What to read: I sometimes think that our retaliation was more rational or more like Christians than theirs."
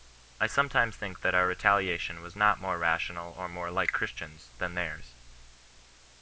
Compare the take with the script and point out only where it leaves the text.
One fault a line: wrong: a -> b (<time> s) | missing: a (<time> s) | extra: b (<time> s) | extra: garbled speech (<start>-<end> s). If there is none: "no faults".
extra: not (2.4 s)